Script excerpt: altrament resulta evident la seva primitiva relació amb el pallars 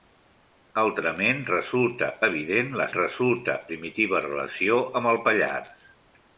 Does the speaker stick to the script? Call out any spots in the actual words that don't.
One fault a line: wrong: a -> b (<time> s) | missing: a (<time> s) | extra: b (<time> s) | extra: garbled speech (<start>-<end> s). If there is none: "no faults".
wrong: seva -> resulta (3.0 s)